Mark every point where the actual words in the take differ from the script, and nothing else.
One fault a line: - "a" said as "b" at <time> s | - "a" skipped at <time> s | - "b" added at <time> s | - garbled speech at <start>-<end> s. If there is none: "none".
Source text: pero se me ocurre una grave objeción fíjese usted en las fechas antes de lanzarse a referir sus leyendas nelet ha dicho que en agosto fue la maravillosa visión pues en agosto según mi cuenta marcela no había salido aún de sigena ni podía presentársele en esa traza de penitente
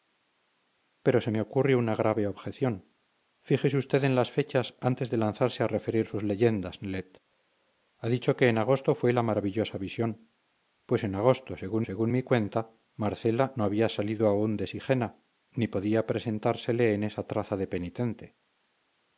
- "según" added at 11.8 s